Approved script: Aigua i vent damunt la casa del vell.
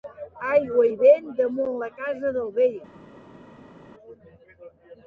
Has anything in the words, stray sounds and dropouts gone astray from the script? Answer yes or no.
no